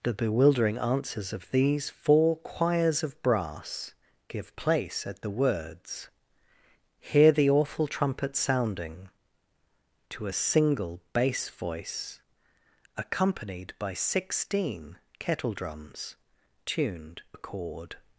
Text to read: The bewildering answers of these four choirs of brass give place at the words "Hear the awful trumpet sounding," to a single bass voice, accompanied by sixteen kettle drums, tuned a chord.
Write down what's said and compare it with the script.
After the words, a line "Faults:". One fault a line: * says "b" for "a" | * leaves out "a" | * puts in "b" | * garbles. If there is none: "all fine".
The bewildering answers of these four choirs of brass give place at the words "Hear the awful trumpet sounding," to a single bass voice, accompanied by sixteen kettle drums, tuned a chord.
Faults:
all fine